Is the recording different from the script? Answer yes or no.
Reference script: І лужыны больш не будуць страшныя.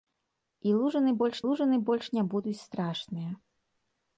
yes